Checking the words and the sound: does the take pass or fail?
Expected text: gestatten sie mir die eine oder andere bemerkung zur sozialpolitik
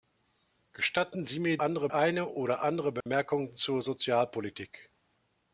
fail